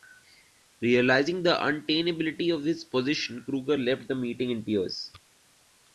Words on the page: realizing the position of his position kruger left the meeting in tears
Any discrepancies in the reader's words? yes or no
yes